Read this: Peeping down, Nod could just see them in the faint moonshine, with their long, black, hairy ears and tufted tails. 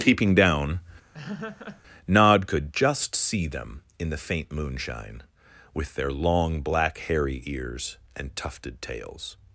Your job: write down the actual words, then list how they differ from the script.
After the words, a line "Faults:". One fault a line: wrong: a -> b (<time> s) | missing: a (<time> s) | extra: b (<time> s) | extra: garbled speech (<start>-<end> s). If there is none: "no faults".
Peeping down, Nod could just see them in the faint moonshine, with their long, black, hairy ears and tufted tails.
Faults:
no faults